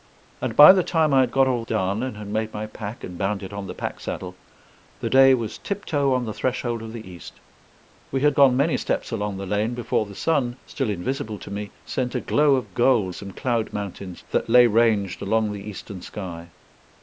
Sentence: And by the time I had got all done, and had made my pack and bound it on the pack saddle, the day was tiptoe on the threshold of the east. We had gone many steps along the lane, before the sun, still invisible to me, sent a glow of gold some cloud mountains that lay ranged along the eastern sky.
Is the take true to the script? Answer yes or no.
yes